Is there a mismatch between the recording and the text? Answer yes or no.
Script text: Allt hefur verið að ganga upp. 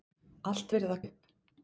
yes